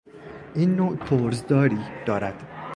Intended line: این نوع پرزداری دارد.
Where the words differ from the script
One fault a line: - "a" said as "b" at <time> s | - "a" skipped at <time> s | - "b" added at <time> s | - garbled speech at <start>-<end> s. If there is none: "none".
none